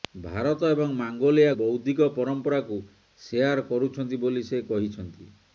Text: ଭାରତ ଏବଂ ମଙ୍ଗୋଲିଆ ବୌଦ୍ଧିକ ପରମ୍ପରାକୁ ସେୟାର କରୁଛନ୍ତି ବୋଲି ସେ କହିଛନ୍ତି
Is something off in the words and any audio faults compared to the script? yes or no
no